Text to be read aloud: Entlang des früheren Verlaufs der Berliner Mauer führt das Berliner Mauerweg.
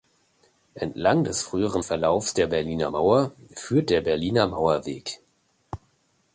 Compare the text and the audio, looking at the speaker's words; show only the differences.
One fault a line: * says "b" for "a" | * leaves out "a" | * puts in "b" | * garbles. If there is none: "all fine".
* says "der" for "das"